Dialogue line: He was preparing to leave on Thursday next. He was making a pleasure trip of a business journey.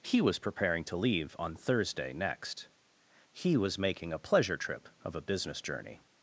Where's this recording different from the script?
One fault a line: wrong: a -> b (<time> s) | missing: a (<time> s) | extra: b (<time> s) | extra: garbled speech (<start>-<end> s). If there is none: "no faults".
no faults